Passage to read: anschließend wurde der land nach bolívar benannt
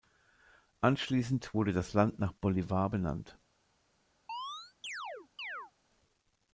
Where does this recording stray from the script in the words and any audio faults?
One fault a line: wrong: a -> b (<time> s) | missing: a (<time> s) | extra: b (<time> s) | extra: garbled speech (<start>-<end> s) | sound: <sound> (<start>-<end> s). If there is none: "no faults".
wrong: der -> das (1.7 s)
sound: chirp (4.3-5.7 s)